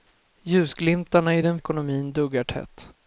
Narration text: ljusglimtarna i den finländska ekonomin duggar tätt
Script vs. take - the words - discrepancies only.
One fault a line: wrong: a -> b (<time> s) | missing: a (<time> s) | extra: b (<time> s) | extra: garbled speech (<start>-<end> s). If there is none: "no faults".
missing: finländska (1.6 s)